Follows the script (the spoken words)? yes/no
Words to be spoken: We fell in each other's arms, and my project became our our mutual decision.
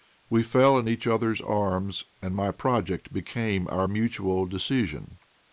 no